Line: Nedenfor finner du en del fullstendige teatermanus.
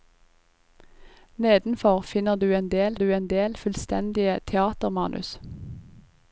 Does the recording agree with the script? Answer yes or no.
no